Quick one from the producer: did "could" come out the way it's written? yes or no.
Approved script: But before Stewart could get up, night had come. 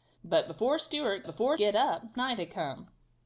no